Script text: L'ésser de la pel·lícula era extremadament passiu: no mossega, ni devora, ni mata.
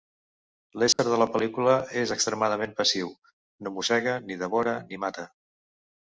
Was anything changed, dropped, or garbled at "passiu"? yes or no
no